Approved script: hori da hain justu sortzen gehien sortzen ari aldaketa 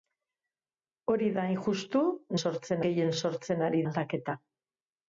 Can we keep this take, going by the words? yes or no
yes